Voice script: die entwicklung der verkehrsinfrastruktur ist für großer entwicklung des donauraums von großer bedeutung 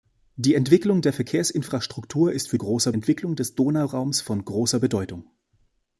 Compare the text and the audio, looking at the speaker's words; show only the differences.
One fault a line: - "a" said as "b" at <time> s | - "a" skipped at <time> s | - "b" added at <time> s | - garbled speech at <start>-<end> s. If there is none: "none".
none